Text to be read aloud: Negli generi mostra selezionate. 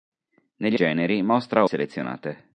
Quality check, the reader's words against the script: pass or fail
pass